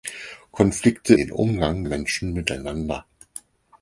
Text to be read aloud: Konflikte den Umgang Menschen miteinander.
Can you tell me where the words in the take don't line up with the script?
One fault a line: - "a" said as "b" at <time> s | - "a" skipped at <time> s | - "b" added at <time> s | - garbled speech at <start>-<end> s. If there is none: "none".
none